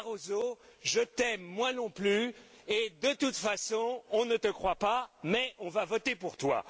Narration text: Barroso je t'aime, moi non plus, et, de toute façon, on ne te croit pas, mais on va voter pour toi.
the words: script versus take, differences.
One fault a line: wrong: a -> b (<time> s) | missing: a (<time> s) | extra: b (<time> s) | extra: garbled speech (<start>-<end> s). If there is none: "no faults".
no faults